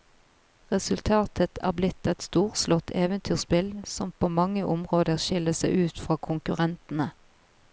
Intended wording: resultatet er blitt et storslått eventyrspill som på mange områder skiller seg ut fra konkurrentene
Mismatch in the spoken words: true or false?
false